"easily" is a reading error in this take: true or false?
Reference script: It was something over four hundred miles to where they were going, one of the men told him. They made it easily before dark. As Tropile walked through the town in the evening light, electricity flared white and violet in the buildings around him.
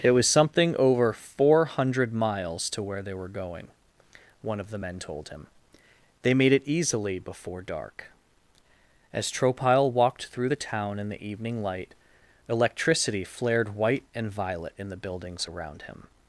false